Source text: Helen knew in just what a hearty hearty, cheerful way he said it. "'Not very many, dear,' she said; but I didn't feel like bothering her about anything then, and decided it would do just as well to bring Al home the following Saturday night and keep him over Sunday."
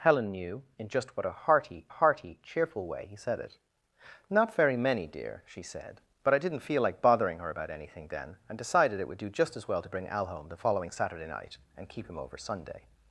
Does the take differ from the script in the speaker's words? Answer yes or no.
no